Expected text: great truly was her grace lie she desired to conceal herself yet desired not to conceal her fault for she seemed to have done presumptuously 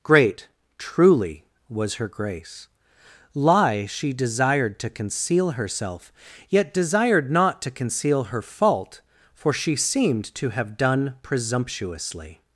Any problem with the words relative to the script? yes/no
no